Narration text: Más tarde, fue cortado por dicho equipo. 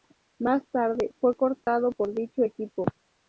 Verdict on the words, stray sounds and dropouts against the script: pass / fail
fail